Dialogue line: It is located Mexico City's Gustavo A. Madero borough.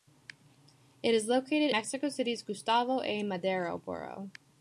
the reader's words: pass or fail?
pass